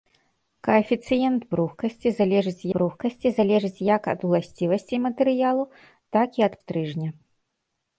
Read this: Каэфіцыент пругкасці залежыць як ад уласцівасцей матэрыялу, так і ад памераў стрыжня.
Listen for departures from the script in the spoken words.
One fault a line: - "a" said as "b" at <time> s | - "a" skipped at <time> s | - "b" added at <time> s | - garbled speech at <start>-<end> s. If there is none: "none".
- "пругкасці залежыць" added at 2.8 s
- "памераў" skipped at 6.5 s